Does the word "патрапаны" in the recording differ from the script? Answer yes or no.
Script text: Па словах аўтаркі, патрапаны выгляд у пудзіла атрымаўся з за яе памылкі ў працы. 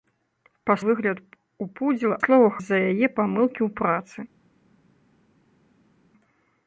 yes